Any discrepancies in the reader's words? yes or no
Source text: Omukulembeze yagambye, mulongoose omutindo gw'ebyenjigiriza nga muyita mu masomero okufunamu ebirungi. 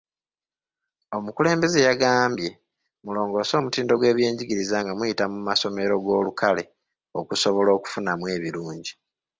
yes